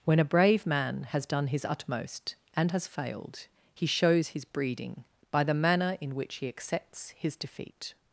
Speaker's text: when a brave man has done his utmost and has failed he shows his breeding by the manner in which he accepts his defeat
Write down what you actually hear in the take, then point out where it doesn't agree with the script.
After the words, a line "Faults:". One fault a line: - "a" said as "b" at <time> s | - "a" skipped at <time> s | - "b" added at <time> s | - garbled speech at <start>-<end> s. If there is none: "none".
when a brave man has done his utmost and has failed he shows his breeding by the manner in which he accepts his defeat
Faults:
none